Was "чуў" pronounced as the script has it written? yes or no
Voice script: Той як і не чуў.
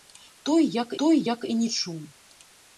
yes